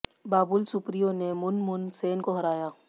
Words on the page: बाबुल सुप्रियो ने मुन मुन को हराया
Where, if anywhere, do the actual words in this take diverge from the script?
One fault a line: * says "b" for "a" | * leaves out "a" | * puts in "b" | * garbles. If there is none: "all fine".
* puts in "सेन"